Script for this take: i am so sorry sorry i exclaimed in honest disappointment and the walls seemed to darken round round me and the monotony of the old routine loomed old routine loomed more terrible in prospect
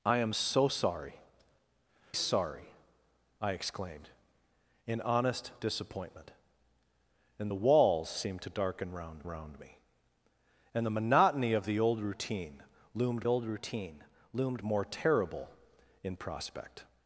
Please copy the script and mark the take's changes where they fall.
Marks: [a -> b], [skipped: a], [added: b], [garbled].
i am so sorry sorry i exclaimed in honest disappointment and the walls seemed to darken round round me and the monotony of the old routine loomed old routine loomed more terrible in prospect